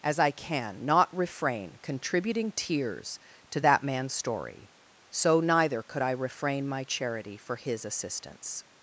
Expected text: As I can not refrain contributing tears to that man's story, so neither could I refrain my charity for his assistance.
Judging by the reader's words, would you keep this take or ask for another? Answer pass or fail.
pass